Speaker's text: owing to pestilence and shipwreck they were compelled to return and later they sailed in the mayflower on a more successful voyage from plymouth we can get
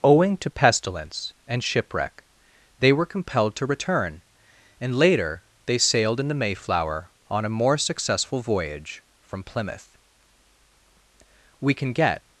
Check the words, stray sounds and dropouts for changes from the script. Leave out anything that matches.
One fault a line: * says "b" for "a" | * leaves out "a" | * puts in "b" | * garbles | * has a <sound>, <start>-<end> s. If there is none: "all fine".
all fine